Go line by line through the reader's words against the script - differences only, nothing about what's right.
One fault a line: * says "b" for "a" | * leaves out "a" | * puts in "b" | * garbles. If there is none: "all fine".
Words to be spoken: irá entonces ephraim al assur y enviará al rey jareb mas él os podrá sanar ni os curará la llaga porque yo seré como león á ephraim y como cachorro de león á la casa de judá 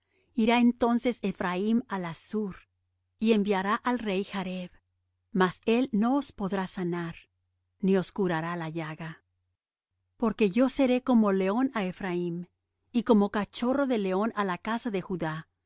* puts in "no"